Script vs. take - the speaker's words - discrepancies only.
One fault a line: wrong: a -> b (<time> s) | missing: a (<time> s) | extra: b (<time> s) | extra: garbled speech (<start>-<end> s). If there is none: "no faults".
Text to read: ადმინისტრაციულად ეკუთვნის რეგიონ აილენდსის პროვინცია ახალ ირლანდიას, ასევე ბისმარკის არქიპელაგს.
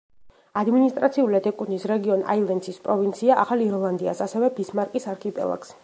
no faults